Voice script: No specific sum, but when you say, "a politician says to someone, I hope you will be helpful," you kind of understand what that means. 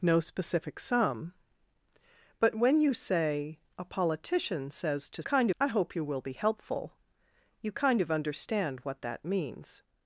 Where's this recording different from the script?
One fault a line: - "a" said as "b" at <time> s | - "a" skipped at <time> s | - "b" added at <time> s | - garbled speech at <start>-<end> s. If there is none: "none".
- "someone" said as "kind" at 5.2 s